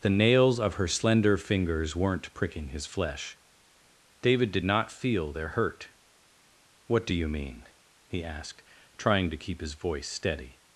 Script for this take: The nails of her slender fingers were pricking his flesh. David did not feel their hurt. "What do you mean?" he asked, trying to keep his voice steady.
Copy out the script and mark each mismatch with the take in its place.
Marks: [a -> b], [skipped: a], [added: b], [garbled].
The nails of her slender fingers [were -> weren't] pricking his flesh. David did not feel their hurt. "What do you mean?" he asked, trying to keep his voice steady.